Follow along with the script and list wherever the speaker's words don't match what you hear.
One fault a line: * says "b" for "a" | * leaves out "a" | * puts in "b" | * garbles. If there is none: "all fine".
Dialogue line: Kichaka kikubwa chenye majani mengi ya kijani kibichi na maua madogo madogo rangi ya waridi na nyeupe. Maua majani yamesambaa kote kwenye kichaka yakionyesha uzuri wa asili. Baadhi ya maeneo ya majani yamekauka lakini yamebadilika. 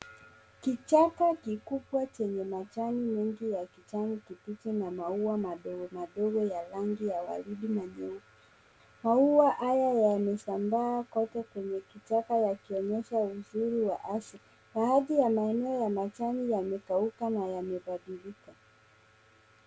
* puts in "ya"
* says "haya" for "majani"
* says "na" for "lakini"